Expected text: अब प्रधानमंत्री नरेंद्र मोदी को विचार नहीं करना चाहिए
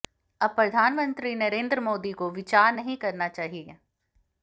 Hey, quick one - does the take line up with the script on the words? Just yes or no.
yes